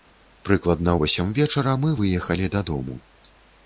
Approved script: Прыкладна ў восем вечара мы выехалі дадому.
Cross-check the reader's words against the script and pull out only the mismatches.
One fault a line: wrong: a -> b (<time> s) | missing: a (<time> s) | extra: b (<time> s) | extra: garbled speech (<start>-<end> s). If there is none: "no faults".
missing: ў (0.9 s)